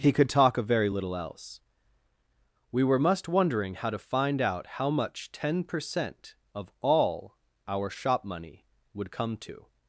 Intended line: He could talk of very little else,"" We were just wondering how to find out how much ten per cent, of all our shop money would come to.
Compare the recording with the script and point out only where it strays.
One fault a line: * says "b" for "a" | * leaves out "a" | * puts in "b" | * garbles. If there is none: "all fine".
* says "must" for "just"